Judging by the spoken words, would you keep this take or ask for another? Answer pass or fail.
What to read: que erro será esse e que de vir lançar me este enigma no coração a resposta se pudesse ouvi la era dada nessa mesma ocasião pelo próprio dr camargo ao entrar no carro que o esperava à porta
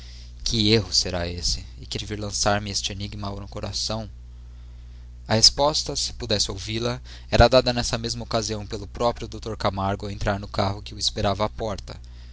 pass